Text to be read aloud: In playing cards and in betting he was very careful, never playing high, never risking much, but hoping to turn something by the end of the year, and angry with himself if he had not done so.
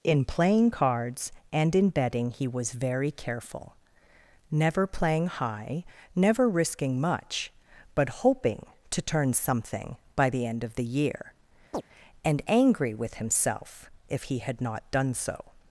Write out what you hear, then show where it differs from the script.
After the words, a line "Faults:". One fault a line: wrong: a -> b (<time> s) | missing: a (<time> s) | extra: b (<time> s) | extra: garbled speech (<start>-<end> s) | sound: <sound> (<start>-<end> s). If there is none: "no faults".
In playing cards and in betting he was very careful, never playing high, never risking much, but hoping to turn something by the end of the year, and angry with himself if he had not done so.
Faults:
sound: chirp (11.7-11.8 s)